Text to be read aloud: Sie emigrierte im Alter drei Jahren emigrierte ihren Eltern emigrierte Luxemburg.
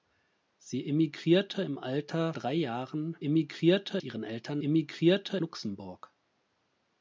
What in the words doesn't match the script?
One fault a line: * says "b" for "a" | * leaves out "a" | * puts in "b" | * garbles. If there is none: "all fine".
all fine